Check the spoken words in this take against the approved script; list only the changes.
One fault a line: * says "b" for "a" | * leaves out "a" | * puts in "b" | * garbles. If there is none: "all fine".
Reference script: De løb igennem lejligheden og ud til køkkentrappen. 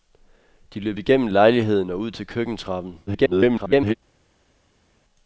* garbles